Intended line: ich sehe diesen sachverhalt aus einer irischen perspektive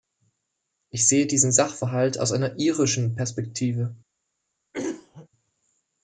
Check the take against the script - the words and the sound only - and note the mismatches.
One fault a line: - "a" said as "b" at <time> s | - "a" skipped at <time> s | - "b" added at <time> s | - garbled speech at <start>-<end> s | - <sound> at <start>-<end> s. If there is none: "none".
- throat clearing at 4.7-5.3 s